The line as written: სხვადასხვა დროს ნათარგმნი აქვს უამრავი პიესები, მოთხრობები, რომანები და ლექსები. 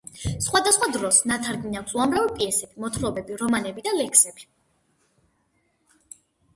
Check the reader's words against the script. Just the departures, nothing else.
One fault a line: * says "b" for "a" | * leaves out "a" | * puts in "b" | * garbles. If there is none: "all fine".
all fine